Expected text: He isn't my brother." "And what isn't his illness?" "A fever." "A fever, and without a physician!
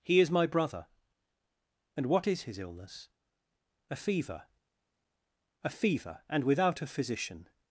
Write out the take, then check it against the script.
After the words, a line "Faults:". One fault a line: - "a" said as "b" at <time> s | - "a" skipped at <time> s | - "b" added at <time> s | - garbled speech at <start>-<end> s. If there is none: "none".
He is my brother." "And what is his illness?" "A fever." "A fever, and without a physician!
Faults:
- "isn't" said as "is" at 0.2 s
- "isn't" said as "is" at 2.3 s